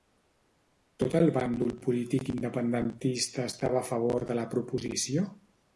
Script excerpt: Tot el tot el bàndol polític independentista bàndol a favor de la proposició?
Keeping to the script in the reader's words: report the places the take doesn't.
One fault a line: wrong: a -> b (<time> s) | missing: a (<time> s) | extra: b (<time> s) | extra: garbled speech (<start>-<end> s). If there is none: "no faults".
missing: tot el (1.3 s)
wrong: bàndol -> estava (3.5 s)